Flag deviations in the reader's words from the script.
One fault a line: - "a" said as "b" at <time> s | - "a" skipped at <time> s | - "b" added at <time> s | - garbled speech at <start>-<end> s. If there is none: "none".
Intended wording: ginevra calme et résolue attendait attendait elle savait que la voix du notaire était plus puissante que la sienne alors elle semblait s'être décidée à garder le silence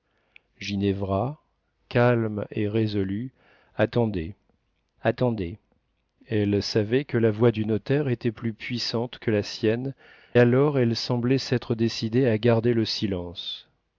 none